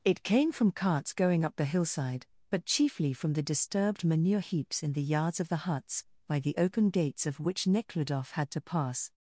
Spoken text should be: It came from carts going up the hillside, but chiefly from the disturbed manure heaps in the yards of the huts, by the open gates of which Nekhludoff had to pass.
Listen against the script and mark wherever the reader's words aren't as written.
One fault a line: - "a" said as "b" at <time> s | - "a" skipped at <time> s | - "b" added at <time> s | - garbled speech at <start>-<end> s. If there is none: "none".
none